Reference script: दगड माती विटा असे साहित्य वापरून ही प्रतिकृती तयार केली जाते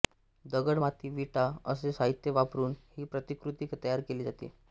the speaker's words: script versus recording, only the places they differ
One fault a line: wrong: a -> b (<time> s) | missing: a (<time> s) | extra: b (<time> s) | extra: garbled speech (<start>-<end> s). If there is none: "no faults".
no faults